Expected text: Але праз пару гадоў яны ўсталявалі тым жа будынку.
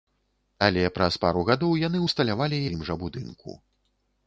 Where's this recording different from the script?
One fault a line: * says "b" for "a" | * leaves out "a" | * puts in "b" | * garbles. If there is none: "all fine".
all fine